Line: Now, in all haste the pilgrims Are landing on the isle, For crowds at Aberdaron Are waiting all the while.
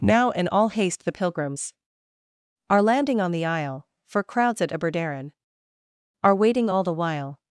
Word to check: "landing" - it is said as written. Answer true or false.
true